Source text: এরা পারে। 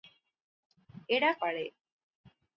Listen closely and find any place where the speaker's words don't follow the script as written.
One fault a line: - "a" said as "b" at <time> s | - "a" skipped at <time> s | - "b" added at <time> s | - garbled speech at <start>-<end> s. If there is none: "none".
none